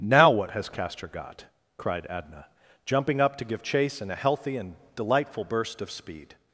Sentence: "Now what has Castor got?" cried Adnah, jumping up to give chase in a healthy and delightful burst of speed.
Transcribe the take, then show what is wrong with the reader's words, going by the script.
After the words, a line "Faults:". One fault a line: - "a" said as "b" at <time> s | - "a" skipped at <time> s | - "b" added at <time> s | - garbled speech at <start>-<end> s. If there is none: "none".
"Now what has Castor got?" cried Adnah, jumping up to give chase in a healthy and delightful burst of speed.
Faults:
none